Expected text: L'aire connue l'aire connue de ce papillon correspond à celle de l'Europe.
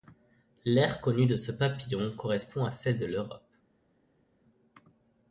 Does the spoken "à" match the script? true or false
true